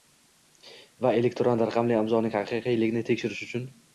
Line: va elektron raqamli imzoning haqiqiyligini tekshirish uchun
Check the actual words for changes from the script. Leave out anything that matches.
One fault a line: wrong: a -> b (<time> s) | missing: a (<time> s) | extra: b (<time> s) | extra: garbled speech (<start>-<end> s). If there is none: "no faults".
no faults